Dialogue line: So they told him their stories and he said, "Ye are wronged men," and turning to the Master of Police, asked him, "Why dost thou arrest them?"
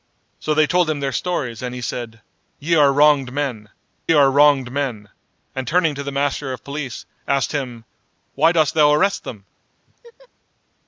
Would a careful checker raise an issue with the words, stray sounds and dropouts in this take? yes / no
yes